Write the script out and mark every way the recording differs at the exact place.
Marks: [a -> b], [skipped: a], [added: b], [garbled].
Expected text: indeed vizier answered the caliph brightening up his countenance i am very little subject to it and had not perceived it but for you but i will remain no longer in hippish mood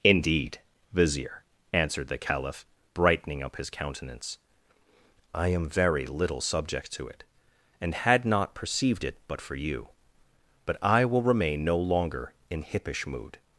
indeed vizier answered the caliph brightening up his countenance i am very little subject to it and had not perceived it but for you but i will remain no longer in hippish mood